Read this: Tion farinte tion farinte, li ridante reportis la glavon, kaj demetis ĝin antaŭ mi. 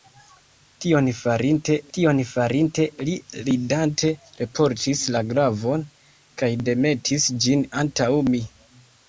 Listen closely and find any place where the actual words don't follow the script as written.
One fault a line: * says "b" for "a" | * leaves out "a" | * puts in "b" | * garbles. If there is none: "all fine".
all fine